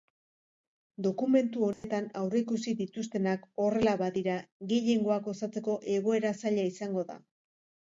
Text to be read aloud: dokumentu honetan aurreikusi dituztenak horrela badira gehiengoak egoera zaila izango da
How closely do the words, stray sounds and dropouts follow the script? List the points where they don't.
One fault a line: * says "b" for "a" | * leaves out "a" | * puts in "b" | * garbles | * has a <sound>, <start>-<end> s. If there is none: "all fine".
* has a dropout, 1.7-1.8 s
* puts in "osatzeko"